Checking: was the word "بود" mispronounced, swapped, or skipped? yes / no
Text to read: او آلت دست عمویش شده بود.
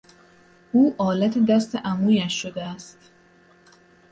yes